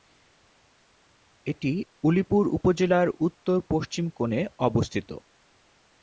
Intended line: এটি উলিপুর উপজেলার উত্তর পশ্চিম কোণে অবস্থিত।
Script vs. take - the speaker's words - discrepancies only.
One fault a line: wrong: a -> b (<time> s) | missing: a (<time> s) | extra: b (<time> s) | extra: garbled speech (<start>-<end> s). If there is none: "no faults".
no faults